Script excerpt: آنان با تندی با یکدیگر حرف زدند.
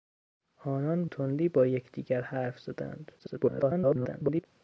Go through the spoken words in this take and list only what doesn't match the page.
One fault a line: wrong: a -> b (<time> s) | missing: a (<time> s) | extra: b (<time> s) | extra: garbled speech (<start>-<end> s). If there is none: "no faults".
missing: با (1.1 s)
extra: garbled speech (3.2-4.5 s)